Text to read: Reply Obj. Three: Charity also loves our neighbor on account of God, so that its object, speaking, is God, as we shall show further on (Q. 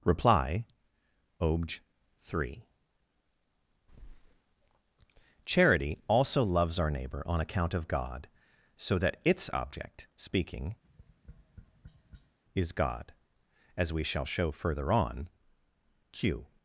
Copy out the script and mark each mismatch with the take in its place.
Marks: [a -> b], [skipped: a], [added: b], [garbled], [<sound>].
Reply Obj. Three: Charity also loves our neighbor on account of God, so that its object, speaking, [tap] is God, as we shall show further on (Q.